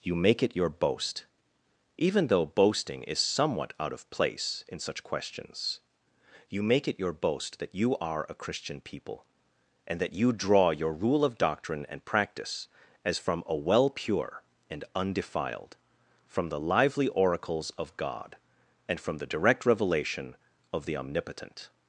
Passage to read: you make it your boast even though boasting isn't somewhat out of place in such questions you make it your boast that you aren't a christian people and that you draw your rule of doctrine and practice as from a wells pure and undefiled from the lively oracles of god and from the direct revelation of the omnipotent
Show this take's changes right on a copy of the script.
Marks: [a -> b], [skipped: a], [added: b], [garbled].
you make it your boast even though boasting [isn't -> is] somewhat out of place in such questions you make it your boast that you [aren't -> are] a christian people and that you draw your rule of doctrine and practice as from a [wells -> well] pure and undefiled from the lively oracles of god and from the direct revelation of the omnipotent